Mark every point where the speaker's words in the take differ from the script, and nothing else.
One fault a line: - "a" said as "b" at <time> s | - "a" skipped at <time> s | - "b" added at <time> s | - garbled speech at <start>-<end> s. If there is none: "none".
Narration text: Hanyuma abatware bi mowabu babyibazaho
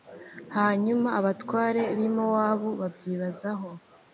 none